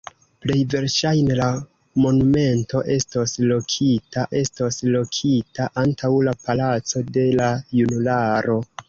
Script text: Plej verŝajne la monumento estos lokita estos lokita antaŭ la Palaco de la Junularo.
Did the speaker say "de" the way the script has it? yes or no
yes